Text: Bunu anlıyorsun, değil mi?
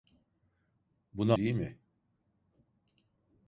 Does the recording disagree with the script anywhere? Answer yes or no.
yes